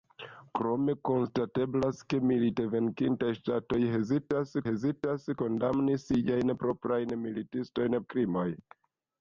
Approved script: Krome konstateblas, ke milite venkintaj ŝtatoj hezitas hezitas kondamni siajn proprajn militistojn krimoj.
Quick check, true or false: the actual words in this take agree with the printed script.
true